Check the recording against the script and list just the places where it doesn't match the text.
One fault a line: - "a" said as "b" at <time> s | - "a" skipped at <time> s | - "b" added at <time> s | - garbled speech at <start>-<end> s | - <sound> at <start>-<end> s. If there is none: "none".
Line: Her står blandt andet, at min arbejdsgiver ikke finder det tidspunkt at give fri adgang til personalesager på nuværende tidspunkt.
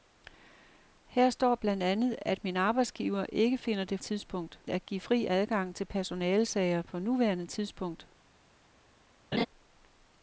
- laugh at 9.3-9.5 s